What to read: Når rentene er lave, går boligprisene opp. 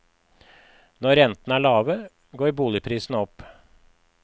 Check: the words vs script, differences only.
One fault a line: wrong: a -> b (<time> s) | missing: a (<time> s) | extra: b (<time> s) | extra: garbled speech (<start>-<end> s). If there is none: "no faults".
no faults